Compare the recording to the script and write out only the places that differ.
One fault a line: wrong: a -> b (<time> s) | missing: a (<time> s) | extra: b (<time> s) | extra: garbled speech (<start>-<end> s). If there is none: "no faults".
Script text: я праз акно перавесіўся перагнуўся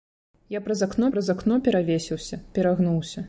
extra: праз акно (1.1 s)